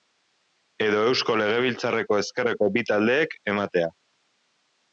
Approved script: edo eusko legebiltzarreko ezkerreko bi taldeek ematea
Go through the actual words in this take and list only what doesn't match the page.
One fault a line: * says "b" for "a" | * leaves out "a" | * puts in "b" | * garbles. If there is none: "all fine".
all fine